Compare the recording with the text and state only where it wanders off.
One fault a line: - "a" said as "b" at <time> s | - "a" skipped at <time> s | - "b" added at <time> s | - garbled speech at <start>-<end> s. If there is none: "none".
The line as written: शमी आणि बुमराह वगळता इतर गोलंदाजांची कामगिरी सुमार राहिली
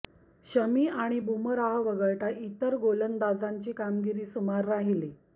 none